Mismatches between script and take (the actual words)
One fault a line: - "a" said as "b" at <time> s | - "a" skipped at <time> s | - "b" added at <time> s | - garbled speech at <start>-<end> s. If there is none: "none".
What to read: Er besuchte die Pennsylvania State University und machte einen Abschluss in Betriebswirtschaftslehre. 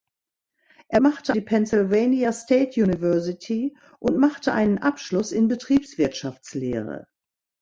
- "besuchte" said as "machte" at 1.0 s